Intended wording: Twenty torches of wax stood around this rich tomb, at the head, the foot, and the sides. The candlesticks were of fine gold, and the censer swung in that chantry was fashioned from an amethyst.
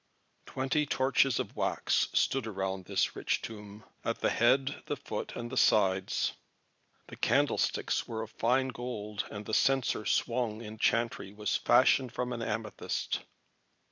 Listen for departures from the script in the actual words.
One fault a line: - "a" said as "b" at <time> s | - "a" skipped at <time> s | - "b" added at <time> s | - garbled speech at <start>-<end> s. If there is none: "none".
- "that" skipped at 10.8 s